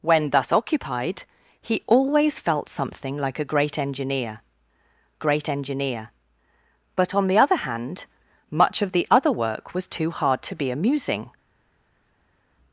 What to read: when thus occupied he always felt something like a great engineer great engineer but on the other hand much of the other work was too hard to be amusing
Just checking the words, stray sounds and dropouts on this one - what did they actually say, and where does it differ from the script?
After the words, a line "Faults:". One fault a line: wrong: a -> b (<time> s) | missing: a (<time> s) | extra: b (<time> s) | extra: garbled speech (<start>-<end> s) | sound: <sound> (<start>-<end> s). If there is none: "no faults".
when thus occupied he always felt something like a great engineer great engineer but on the other hand much of the other work was too hard to be amusing
Faults:
no faults